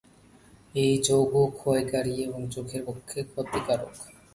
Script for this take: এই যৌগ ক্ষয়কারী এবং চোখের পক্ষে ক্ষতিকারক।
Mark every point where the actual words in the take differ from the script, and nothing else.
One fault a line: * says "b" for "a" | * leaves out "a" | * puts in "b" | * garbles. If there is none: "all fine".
all fine